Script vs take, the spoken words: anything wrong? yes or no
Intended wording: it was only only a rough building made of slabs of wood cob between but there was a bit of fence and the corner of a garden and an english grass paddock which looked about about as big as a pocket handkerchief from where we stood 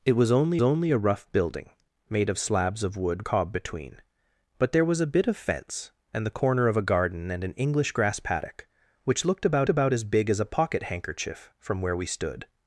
no